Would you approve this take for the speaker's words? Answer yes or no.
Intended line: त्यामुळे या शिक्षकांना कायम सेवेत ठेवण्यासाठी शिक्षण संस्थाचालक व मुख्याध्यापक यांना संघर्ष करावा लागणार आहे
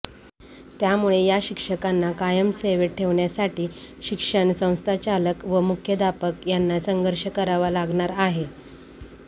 yes